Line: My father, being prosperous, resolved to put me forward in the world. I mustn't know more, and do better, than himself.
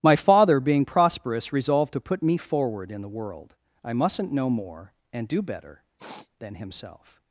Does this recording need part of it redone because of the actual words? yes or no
no